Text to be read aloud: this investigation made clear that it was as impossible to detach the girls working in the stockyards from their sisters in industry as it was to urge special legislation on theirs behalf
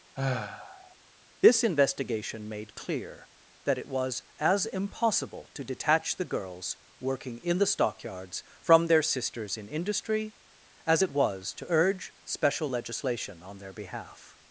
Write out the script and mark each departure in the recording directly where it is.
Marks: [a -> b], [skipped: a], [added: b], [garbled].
this investigation made clear that it was as impossible to detach the girls working in the stockyards from their sisters in industry as it was to urge special legislation on [theirs -> their] behalf